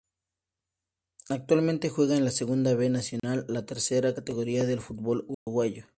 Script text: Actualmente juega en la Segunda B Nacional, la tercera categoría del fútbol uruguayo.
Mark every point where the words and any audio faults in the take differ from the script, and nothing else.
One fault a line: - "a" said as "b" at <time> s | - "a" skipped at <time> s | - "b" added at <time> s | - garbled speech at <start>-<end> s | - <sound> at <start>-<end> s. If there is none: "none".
- dropout at 3.2-3.2 s
- dropout at 5.3-5.5 s